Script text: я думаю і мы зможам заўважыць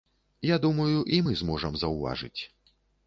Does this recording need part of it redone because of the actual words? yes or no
no